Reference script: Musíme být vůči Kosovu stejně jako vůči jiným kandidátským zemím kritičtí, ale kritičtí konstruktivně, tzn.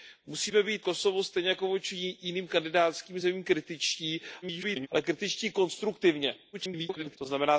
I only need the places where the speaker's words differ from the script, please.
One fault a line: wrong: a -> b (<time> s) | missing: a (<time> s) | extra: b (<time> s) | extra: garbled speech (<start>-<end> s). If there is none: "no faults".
missing: vůči (0.8 s)
extra: garbled speech (4.4-4.9 s)
extra: garbled speech (6.5-7.2 s)